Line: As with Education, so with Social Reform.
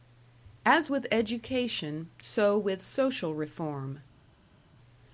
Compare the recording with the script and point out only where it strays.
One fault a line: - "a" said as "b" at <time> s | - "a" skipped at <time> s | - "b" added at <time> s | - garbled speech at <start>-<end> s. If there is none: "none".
none